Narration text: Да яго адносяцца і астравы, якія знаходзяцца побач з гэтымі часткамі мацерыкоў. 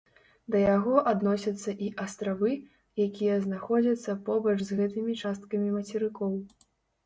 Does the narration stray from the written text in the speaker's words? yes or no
no